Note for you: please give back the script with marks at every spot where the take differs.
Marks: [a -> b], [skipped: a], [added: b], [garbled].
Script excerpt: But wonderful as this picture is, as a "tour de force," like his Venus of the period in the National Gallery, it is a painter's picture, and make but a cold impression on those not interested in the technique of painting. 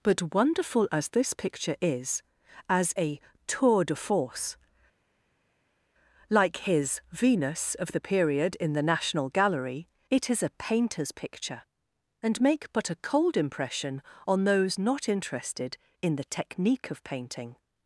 But wonderful as this picture is, as a "tour de force," like his Venus of the period in the National Gallery, it is a painter's picture, and make but a cold impression on those not interested in the technique of painting.